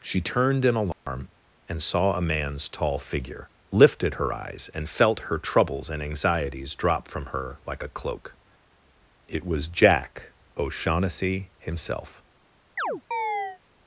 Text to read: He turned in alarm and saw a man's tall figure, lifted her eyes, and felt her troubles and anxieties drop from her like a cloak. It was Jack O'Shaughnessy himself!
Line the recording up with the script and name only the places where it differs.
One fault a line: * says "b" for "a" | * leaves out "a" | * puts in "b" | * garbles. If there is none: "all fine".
* says "She" for "He"